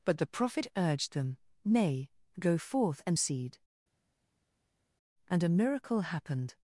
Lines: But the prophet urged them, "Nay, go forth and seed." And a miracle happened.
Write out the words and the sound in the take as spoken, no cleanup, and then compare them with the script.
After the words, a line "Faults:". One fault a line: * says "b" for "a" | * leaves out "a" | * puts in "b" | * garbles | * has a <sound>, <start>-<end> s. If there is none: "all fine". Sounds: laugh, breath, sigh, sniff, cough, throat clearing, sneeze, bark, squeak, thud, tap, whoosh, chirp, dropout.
But the prophet urged them, "Nay, go forth and seed." And a miracle happened.
Faults:
all fine